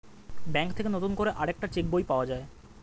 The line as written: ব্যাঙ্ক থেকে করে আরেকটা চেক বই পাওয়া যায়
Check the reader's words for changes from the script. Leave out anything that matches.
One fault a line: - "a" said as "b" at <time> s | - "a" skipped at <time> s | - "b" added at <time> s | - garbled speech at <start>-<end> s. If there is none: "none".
- "নতুন" added at 0.9 s